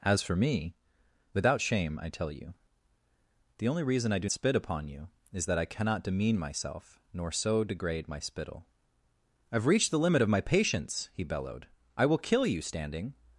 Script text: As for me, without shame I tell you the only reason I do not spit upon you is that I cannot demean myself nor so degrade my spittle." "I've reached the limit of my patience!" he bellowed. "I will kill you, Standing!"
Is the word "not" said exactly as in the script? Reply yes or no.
no